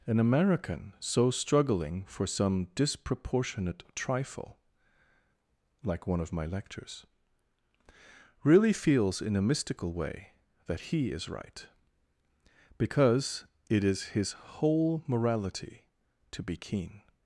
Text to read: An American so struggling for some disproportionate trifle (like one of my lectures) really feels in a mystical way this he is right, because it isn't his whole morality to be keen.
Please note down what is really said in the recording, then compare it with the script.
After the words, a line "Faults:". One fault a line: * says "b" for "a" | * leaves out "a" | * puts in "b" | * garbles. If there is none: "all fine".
An American so struggling for some disproportionate trifle (like one of my lectures) really feels in a mystical way that he is right, because it is his whole morality to be keen.
Faults:
* says "that" for "this"
* says "is" for "isn't"